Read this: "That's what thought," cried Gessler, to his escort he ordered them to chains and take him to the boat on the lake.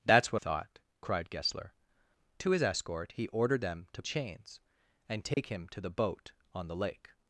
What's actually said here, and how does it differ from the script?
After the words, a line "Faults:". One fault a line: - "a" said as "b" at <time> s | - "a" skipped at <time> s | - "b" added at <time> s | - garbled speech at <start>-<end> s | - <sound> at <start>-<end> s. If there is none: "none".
"That's what thought," cried Gessler, to his escort he ordered them to chains and take him to the boat on the lake.
Faults:
- dropout at 5.3-5.4 s